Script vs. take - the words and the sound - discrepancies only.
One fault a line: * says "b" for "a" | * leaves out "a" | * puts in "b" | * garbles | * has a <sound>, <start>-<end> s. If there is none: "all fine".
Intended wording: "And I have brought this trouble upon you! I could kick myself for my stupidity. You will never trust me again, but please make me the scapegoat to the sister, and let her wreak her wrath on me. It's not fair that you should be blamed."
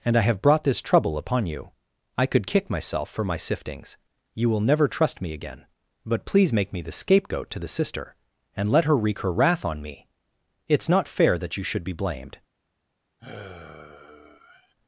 * says "siftings" for "stupidity"
* has a sigh, 13.2-14.7 s